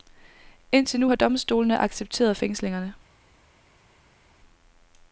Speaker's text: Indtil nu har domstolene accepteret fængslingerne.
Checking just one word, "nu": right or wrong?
right